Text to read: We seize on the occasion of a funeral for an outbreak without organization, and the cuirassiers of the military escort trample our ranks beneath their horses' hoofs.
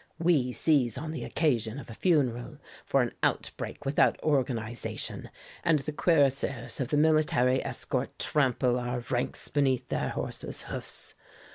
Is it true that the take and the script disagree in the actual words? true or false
false